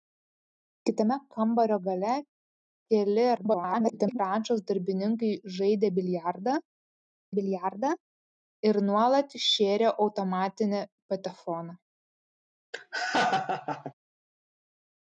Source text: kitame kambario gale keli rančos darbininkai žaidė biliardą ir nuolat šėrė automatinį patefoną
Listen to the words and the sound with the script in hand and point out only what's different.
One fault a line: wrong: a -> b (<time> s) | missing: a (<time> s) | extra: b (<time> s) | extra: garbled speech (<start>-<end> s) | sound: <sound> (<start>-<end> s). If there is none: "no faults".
extra: garbled speech (3.4-4.2 s)
extra: biliardą (7.4 s)
sound: laugh (12.7-13.9 s)